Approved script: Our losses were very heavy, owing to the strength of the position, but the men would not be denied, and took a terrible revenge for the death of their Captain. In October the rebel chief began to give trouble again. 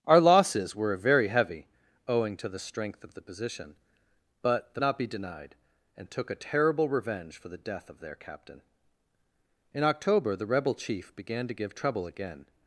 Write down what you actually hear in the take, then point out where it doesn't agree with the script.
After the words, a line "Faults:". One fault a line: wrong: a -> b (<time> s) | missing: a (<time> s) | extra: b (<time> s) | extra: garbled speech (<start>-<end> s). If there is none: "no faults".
Our losses were very heavy, owing to the strength of the position, but the not be denied, and took a terrible revenge for the death of their Captain. In October the rebel chief began to give trouble again.
Faults:
missing: men would (4.8 s)